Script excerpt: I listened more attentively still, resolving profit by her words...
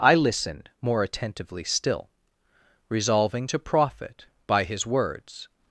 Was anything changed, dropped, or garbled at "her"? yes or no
yes